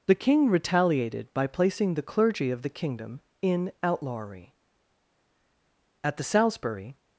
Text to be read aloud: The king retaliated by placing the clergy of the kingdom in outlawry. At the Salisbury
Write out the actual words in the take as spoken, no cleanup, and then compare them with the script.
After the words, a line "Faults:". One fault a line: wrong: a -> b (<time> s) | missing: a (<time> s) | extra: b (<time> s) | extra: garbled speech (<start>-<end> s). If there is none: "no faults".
The king retaliated by placing the clergy of the kingdom in outlawry. At the Salisbury
Faults:
no faults